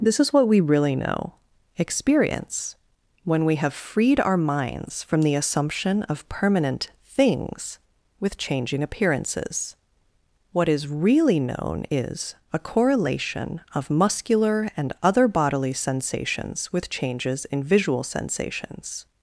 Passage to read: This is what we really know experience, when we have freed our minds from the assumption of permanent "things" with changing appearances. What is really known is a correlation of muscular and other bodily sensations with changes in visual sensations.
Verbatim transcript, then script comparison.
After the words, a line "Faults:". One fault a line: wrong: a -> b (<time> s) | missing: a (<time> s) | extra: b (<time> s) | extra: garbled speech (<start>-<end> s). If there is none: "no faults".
This is what we really know experience, when we have freed our minds from the assumption of permanent "things" with changing appearances. What is really known is a correlation of muscular and other bodily sensations with changes in visual sensations.
Faults:
no faults